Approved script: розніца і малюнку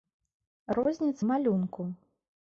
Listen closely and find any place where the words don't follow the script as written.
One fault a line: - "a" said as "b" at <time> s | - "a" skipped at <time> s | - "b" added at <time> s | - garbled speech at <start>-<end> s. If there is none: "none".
none